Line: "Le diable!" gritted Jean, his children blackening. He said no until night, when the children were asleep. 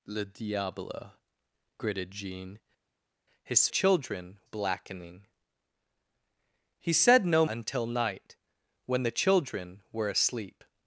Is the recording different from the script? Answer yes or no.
no